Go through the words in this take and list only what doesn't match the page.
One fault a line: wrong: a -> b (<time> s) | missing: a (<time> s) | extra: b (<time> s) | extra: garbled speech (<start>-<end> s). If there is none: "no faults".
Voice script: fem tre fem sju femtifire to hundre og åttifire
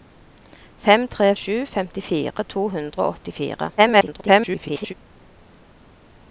missing: fem (1.3 s)
extra: garbled speech (3.8-4.9 s)